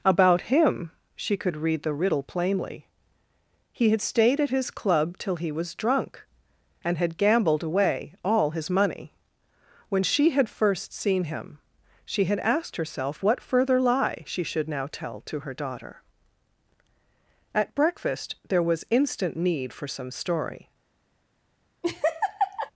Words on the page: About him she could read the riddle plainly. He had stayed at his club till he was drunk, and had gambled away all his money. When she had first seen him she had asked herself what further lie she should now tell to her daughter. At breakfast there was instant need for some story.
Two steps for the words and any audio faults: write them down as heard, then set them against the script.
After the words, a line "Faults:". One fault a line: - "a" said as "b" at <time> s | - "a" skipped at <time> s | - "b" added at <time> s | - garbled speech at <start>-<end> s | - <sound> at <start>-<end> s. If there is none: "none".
About him she could read the riddle plainly. He had stayed at his club till he was drunk, and had gambled away all his money. When she had first seen him she had asked herself what further lie she should now tell to her daughter. At breakfast there was instant need for some story.
Faults:
- laugh at 21.8-22.7 s